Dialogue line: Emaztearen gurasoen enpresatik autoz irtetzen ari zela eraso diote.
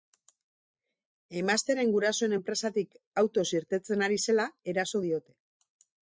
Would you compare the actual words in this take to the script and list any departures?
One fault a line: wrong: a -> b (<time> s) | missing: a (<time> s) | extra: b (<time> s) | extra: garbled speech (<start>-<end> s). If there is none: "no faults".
no faults